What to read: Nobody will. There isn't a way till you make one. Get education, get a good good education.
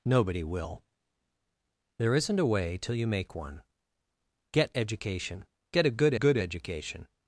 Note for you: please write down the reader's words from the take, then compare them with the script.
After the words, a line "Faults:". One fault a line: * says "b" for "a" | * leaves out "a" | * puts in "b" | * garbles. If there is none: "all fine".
Nobody will. There isn't a way till you make one. Get education, get a good good education.
Faults:
all fine